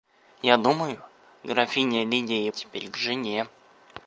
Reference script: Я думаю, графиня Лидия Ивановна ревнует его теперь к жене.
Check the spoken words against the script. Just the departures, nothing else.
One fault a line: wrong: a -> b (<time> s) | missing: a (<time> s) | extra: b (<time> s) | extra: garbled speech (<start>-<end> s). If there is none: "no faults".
missing: Ивановна ревнует его (2.5 s)